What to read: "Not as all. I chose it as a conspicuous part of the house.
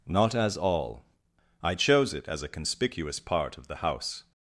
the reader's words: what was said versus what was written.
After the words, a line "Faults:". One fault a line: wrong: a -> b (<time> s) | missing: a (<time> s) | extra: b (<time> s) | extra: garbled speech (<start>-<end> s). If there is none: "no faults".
"Not as all. I chose it as a conspicuous part of the house.
Faults:
no faults